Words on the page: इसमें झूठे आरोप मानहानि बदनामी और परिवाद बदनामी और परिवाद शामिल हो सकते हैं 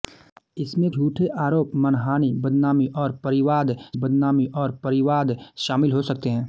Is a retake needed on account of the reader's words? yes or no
no